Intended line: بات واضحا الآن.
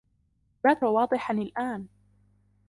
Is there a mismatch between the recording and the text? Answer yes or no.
no